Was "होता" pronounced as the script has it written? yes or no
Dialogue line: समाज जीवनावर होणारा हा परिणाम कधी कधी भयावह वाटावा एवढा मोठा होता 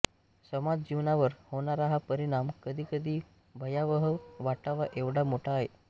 no